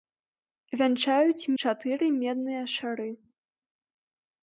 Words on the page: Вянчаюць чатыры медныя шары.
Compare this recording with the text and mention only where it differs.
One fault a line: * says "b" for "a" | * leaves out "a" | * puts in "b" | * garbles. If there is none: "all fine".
all fine